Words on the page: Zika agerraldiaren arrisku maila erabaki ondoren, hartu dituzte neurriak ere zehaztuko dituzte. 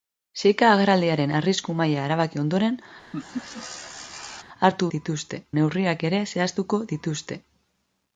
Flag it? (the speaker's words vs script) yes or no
no